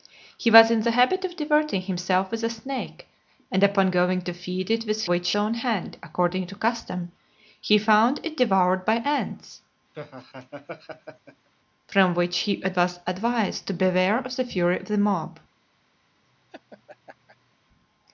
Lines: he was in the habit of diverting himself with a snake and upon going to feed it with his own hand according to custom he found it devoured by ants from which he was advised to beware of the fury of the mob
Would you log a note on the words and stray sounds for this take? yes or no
yes